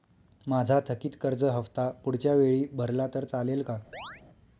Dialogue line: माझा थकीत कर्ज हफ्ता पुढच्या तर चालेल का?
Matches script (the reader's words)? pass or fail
fail